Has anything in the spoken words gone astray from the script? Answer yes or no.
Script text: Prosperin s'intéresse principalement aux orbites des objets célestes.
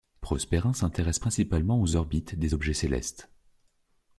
no